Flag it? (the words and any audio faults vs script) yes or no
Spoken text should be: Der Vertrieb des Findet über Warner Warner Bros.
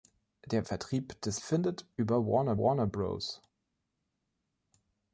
no